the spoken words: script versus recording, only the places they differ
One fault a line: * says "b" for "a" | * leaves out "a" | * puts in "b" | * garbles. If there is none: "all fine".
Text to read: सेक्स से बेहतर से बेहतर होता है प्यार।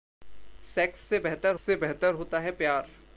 all fine